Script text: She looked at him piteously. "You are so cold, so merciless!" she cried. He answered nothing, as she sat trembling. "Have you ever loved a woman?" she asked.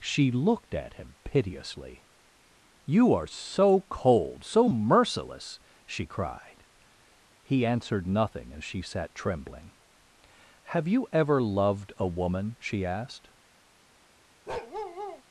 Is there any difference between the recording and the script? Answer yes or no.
no